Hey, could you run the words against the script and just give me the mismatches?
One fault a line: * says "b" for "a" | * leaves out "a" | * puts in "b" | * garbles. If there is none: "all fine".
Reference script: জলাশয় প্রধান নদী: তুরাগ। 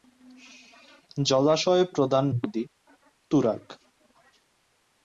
all fine